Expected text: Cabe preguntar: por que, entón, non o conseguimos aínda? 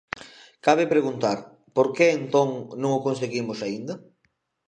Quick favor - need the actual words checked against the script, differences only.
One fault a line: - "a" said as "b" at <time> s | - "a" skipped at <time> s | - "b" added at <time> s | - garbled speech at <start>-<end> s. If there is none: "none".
none